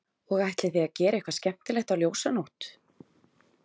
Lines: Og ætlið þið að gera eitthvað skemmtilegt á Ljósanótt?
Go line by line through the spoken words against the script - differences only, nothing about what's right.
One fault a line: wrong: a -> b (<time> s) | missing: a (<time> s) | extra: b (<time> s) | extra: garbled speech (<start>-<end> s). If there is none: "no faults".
no faults